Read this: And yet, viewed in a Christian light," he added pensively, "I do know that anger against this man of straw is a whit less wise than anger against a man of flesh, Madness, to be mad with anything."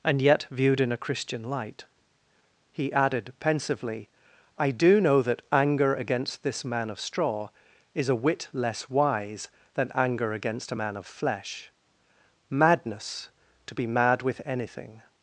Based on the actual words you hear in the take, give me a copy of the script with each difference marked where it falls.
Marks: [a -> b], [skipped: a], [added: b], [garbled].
And yet, viewed in a Christian light," he added pensively, "I do know that anger against this man of straw is a whit less wise than anger against a man of flesh, Madness, to be mad with anything."